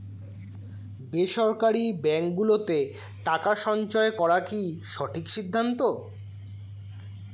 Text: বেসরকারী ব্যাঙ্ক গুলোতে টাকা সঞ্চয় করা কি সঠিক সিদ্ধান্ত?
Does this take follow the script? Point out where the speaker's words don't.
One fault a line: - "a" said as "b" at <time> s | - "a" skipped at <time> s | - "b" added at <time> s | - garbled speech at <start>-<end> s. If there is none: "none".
none